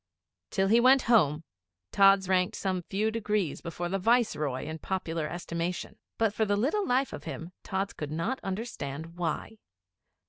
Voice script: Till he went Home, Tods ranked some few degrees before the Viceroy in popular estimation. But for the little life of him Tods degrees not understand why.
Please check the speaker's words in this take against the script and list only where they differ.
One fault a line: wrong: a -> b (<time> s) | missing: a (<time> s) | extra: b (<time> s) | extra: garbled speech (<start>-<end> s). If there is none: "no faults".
wrong: degrees -> could (7.9 s)